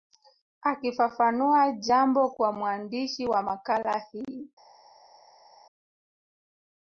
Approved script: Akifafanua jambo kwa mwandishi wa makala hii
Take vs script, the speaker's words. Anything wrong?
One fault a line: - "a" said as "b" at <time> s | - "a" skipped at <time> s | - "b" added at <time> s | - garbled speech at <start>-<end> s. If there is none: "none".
none